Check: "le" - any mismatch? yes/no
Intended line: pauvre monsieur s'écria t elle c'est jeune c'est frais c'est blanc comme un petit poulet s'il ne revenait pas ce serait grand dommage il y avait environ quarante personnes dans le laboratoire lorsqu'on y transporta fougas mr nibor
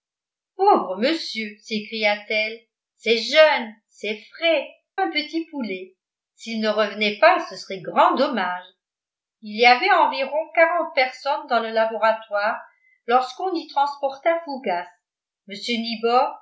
no